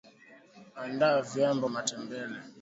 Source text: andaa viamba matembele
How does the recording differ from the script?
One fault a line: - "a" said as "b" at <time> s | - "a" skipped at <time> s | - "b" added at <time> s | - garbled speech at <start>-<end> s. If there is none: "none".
none